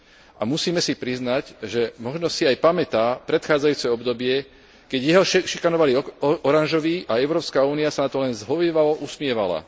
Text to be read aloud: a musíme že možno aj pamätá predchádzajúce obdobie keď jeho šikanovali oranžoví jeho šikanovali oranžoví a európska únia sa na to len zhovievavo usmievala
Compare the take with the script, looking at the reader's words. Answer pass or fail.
fail